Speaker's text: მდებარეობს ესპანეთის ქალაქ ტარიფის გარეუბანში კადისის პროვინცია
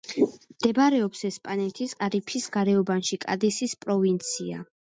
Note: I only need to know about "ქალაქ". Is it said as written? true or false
false